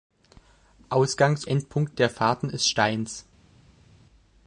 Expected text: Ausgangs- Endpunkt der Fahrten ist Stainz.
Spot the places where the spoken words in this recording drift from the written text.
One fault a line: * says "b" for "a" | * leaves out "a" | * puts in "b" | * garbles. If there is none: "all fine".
all fine